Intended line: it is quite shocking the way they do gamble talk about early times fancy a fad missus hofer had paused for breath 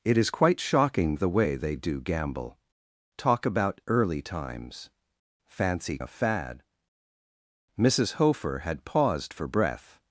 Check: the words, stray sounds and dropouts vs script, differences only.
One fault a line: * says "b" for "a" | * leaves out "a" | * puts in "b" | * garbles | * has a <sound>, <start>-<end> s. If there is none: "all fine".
all fine